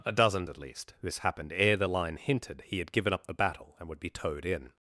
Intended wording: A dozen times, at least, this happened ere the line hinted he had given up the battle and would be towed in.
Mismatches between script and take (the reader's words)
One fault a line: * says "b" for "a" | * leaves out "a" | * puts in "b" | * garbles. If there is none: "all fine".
* leaves out "times"